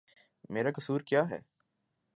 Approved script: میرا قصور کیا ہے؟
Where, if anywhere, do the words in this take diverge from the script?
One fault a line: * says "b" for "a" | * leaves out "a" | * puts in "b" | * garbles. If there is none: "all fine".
all fine